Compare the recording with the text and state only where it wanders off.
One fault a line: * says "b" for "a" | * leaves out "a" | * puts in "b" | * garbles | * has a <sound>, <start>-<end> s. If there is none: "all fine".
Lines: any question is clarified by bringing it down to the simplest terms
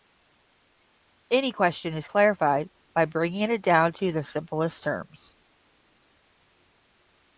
all fine